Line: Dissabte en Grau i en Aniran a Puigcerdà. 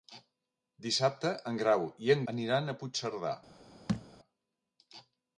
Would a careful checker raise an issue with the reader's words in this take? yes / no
no